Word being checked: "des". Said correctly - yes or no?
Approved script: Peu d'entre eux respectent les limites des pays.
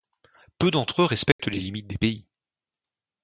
yes